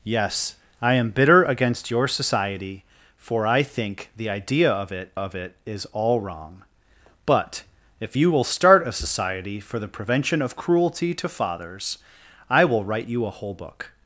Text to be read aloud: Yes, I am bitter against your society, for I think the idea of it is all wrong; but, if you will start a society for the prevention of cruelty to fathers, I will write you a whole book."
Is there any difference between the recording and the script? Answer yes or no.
yes